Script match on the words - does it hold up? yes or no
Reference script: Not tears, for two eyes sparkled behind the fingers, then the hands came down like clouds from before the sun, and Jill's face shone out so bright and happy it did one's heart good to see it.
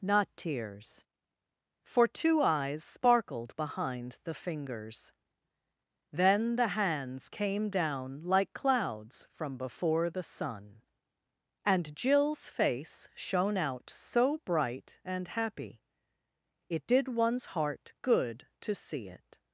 yes